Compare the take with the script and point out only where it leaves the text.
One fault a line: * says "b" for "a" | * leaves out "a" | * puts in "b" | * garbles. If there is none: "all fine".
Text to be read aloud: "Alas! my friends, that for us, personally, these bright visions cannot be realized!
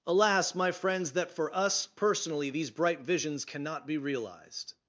all fine